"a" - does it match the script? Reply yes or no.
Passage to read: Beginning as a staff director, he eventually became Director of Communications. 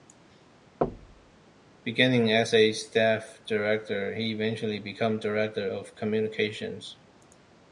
yes